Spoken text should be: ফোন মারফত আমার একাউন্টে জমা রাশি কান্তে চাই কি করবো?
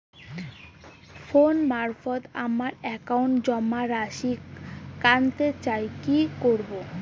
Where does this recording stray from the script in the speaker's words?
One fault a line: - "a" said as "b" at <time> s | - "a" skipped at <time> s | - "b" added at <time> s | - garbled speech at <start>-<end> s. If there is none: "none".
none